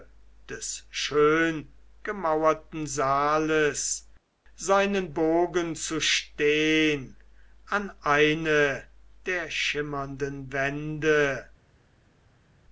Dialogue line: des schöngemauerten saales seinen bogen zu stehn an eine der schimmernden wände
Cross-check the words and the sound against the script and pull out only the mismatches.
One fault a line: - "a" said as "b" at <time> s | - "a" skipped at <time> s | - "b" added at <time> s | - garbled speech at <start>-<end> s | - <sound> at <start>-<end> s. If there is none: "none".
none